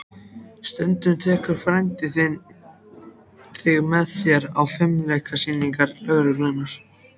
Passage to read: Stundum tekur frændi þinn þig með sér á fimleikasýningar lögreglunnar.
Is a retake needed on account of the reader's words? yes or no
no